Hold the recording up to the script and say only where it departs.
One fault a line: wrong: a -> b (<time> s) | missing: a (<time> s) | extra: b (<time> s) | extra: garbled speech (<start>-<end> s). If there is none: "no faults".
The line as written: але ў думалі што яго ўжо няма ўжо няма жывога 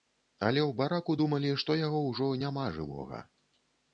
extra: бараку (0.8 s)
missing: ўжо няма (2.7 s)